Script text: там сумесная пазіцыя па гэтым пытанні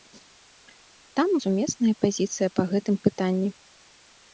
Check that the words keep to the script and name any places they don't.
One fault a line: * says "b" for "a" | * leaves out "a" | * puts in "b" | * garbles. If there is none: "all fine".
all fine